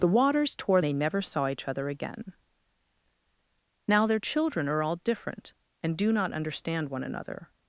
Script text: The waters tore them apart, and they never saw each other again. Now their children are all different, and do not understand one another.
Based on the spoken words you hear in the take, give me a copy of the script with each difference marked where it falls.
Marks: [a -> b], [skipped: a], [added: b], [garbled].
The waters tore [skipped: them apart, and] they never saw each other again. Now their children are all different, and do not understand one another.